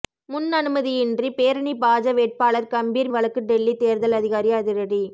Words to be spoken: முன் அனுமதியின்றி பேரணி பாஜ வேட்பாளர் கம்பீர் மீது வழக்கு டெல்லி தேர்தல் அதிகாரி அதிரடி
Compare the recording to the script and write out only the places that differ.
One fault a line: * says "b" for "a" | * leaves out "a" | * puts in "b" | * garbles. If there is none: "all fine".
* leaves out "மீது"